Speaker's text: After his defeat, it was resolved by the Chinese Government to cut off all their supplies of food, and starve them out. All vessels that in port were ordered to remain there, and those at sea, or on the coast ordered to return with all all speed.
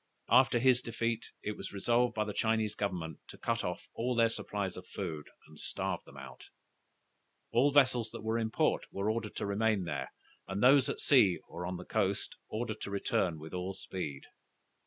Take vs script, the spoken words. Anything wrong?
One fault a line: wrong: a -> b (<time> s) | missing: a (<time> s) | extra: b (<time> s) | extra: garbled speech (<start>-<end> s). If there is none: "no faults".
extra: were (8.2 s)
missing: all (13.8 s)